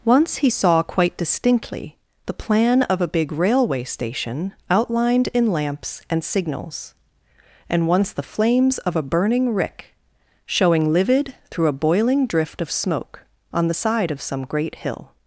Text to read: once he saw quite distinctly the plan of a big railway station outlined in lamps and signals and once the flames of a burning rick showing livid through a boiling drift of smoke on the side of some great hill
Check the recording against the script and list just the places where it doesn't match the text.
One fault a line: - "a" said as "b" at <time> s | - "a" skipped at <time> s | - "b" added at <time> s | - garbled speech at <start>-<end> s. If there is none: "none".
none